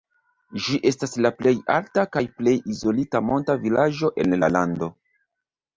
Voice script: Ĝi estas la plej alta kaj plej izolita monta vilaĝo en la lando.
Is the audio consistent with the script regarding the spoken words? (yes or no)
yes